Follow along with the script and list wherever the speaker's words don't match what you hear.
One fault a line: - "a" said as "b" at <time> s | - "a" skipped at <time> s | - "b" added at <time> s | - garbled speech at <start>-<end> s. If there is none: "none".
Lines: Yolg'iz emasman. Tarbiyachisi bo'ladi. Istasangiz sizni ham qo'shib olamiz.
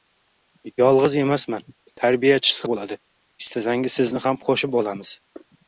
none